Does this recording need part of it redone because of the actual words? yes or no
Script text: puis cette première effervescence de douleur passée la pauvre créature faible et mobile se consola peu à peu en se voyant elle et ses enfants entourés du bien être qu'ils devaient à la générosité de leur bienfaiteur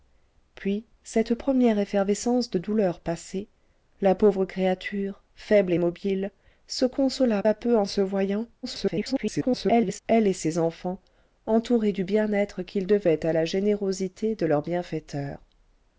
yes